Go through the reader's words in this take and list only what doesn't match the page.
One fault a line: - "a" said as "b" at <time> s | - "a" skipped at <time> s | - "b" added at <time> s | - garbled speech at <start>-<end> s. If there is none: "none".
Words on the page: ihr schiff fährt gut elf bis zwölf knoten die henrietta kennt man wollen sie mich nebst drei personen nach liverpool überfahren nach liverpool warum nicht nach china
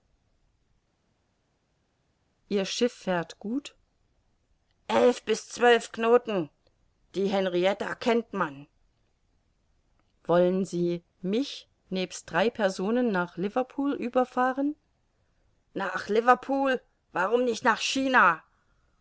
none